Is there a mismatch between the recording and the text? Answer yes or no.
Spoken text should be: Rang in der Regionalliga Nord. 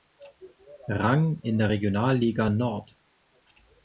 no